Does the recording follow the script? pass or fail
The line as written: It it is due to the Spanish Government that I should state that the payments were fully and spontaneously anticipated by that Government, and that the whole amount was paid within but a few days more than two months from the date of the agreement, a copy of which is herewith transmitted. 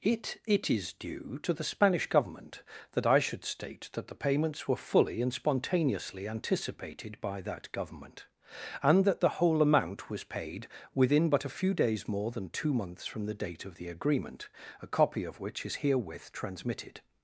pass